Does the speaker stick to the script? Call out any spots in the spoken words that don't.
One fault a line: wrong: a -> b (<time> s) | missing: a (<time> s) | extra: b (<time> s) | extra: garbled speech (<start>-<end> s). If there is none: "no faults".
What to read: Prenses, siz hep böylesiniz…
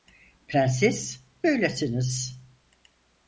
missing: siz hep (1.2 s)